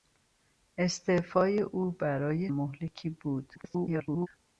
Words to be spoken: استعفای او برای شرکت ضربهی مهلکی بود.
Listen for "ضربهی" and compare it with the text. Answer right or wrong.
wrong